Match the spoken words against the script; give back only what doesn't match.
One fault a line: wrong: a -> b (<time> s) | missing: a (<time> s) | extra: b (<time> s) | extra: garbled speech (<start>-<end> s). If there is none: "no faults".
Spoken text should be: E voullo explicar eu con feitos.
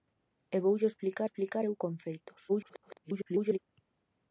extra: explicar (1.2 s)
extra: garbled speech (2.5-3.6 s)